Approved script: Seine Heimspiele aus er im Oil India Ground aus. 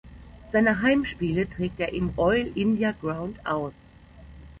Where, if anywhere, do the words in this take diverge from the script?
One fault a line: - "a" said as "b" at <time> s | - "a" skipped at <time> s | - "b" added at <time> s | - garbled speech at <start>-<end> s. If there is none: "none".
- "aus" said as "trägt" at 1.5 s